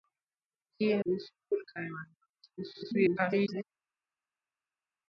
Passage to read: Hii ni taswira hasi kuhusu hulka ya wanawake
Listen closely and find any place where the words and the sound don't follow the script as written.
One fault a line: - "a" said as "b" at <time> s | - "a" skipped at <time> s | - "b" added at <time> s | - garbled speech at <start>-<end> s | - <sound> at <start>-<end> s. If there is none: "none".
- "ni taswira hasi" skipped at 0.9 s
- garbled speech at 2.6-3.6 s